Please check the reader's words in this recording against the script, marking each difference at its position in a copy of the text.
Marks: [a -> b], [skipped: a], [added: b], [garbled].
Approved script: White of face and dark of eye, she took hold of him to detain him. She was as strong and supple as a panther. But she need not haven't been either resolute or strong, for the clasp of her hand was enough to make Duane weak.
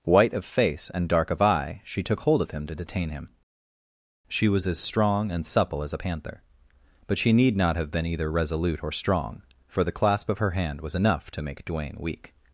White of face and dark of eye, she took hold of him to detain him. She was as strong and supple as a panther. But she need not [haven't -> have] been either resolute or strong, for the clasp of her hand was enough to make Duane weak.